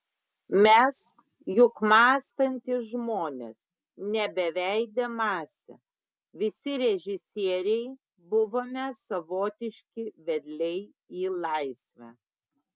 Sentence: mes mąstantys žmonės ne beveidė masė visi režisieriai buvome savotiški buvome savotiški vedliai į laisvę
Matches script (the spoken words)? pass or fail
fail